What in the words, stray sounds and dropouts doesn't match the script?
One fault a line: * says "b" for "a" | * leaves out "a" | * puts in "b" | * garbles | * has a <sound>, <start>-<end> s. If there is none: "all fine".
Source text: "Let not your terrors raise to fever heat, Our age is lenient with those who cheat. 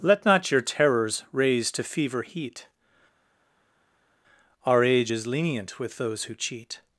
all fine